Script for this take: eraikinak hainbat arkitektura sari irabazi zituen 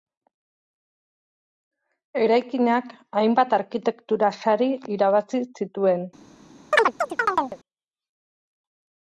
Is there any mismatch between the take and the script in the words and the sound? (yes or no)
yes